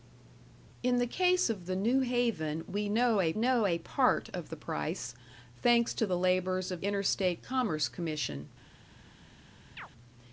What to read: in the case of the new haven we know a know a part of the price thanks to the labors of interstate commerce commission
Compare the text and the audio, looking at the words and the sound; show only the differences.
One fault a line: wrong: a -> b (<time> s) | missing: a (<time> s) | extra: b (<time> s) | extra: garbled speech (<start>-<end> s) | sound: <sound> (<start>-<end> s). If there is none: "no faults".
sound: chirp (9.8-9.9 s)